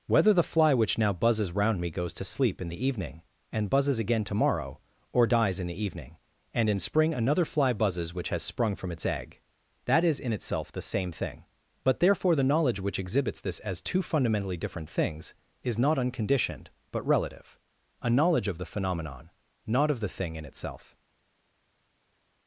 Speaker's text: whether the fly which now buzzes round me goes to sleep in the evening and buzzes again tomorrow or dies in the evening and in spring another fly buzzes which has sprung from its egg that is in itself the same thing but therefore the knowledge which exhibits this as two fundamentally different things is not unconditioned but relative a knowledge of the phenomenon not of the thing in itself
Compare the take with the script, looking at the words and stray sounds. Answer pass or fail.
pass